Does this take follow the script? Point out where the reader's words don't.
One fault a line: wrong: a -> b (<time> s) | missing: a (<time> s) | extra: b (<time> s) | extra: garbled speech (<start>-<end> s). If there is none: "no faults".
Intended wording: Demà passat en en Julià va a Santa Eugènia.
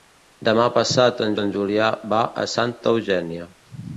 no faults